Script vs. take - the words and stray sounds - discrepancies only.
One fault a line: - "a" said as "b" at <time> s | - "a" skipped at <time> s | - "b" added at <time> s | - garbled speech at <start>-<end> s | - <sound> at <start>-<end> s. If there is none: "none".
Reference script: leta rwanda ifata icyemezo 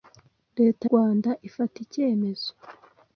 none